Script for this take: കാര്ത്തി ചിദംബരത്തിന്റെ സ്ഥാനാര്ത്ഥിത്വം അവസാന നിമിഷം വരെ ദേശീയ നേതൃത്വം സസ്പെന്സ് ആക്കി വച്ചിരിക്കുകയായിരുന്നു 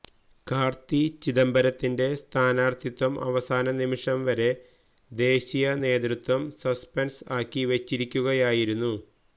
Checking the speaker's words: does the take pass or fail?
pass